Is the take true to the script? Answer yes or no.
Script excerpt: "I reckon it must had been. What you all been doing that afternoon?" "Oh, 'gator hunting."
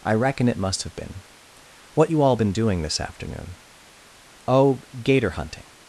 no